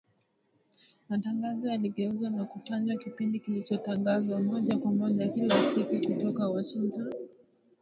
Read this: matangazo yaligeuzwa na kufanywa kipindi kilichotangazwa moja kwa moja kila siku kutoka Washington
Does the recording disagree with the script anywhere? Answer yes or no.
no